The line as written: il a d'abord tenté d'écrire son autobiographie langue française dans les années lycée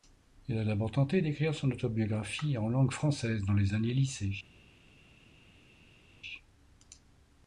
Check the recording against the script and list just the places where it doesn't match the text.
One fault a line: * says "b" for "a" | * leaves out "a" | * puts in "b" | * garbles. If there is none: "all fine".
* puts in "en"